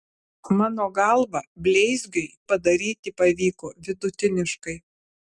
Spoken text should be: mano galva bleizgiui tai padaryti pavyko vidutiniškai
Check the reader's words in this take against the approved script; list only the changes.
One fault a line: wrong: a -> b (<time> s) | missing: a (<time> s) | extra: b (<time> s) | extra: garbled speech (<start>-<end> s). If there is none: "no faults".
missing: tai (2.3 s)